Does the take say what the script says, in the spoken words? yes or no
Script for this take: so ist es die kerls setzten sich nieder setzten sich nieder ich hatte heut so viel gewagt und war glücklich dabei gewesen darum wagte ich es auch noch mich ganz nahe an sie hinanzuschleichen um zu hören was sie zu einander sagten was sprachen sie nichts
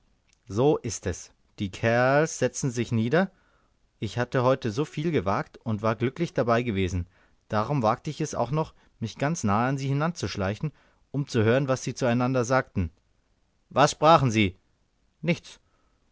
no